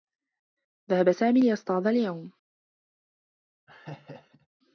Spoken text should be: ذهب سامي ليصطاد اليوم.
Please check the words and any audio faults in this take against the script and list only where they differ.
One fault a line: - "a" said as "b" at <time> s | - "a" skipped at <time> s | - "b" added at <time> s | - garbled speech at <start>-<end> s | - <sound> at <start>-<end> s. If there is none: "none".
- laugh at 3.7-4.5 s